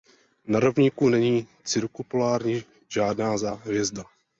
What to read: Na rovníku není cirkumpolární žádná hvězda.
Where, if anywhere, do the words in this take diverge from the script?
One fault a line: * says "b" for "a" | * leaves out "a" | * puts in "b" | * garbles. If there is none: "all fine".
all fine